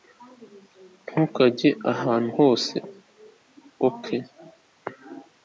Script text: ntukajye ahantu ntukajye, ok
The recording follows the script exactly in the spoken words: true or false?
false